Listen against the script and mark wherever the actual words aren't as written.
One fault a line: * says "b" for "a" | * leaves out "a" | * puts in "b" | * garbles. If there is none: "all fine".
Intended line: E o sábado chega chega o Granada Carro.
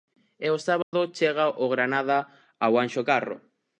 * leaves out "chega"
* puts in "ao Anxo"